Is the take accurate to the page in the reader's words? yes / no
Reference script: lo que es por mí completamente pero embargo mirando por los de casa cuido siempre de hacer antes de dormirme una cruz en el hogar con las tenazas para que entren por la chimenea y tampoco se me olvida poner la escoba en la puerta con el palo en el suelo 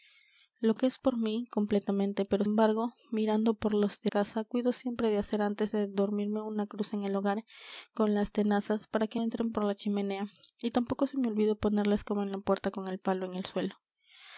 yes